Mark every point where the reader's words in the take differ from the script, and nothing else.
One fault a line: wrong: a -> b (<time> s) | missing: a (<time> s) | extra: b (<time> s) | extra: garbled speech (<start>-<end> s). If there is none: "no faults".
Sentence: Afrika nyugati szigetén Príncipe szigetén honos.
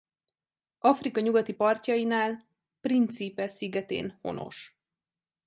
wrong: szigetén -> partjainál (1.5 s)